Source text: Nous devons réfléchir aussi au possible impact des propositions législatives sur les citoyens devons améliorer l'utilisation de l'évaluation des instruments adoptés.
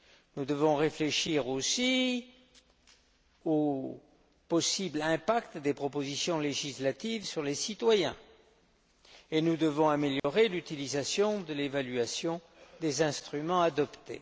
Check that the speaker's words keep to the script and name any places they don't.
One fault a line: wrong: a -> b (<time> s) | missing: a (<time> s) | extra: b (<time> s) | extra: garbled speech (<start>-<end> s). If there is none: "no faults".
extra: et nous (9.3 s)